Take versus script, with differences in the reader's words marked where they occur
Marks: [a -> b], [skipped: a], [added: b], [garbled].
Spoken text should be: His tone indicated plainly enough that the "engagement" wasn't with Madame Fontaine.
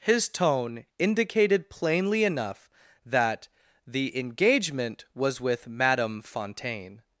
His tone indicated plainly enough that the "engagement" [wasn't -> was] with Madame Fontaine.